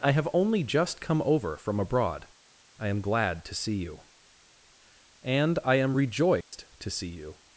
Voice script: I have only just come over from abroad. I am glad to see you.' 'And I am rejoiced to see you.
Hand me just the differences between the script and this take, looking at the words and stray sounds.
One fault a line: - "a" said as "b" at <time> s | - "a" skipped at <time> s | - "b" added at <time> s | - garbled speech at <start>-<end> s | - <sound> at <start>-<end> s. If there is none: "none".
- dropout at 6.4-6.5 s